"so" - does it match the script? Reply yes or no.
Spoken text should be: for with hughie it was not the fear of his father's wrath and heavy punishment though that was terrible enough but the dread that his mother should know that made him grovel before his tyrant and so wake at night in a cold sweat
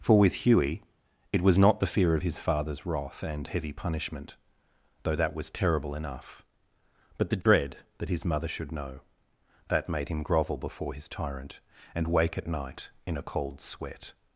no